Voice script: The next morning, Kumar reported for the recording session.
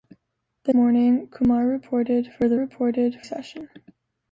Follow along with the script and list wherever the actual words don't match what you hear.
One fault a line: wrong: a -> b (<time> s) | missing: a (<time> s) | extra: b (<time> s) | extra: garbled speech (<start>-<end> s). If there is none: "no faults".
missing: next (0.7 s)
wrong: recording -> reported (2.5 s)